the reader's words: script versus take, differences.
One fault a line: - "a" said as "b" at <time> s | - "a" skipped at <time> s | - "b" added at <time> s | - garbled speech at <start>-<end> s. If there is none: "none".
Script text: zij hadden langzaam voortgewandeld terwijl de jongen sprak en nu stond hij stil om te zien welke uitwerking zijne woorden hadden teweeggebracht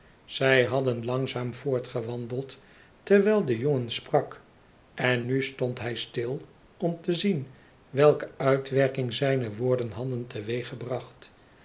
none